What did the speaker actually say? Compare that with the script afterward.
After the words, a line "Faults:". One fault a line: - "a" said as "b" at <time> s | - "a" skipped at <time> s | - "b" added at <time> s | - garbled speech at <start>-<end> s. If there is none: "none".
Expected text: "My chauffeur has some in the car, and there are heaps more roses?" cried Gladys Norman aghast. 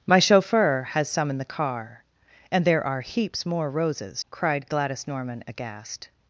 "My chauffeur has some in the car, and there are heaps more roses?" cried Gladys Norman aghast.
Faults:
none